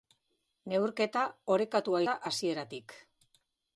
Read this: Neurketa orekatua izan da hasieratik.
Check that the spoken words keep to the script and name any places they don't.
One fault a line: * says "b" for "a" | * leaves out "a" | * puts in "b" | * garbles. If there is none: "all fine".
* leaves out "izan"